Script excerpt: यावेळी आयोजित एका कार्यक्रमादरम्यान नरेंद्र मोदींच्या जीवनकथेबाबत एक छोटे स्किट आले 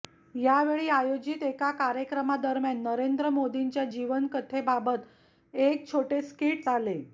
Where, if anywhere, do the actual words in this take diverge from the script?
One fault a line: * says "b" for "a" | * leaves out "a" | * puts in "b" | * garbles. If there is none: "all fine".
all fine